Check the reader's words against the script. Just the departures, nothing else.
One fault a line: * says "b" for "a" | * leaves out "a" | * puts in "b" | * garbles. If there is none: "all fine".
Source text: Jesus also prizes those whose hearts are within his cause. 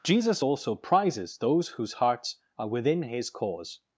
all fine